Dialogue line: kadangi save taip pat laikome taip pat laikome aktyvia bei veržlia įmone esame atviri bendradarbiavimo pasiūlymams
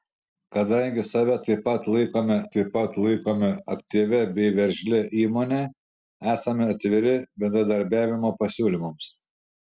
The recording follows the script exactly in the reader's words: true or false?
true